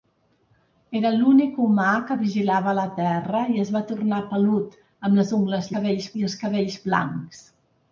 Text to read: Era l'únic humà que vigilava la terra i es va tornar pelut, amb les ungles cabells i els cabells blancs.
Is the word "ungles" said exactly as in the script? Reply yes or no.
yes